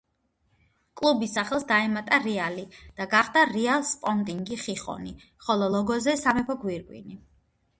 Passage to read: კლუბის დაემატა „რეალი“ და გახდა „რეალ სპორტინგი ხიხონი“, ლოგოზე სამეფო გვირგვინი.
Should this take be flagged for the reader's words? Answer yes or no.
yes